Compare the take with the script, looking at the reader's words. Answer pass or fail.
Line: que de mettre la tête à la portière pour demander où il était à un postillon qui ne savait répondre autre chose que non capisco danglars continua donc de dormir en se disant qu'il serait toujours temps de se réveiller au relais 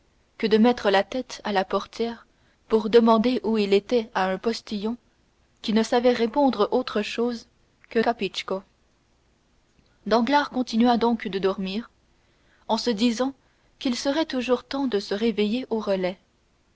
fail